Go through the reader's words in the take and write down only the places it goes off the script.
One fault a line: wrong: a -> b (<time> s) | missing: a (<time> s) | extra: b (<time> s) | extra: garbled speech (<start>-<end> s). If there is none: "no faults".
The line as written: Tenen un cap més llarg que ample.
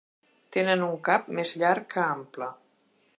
no faults